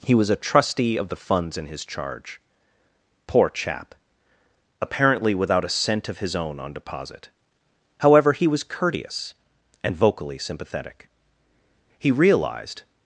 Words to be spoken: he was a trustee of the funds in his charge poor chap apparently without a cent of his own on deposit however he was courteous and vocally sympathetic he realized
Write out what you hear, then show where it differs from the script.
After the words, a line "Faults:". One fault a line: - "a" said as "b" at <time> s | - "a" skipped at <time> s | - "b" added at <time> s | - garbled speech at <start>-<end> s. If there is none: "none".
he was a trustee of the funds in his charge poor chap apparently without a cent of his own on deposit however he was courteous and vocally sympathetic he realized
Faults:
none